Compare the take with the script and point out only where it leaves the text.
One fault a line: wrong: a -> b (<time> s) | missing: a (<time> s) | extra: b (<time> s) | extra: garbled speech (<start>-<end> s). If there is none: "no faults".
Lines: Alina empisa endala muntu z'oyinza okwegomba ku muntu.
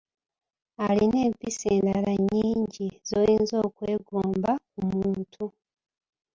wrong: muntu -> nnyingi (2.2 s)